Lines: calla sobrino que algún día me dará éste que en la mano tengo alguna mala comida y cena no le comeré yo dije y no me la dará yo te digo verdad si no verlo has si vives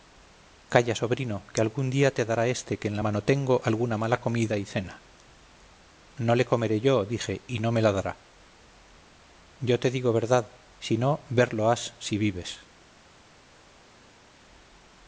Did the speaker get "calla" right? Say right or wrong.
right